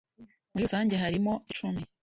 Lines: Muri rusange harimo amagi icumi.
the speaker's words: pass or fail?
fail